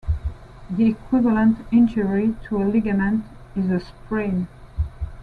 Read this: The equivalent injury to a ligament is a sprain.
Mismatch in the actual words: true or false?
false